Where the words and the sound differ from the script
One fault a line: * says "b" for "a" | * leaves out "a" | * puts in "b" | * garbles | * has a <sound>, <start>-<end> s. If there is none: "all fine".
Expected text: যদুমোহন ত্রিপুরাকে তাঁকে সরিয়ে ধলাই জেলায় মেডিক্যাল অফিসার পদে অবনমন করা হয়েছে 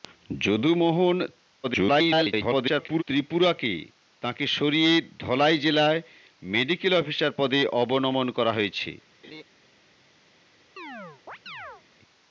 * garbles
* has a laugh, 9.2-9.4 s
* has a chirp, 10.8-11.8 s